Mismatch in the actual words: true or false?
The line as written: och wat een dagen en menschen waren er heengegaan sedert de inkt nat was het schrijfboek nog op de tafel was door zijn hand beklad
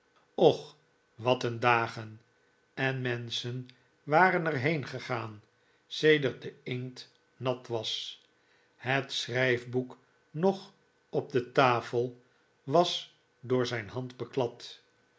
false